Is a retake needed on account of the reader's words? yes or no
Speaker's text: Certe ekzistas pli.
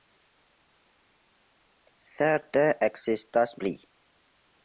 no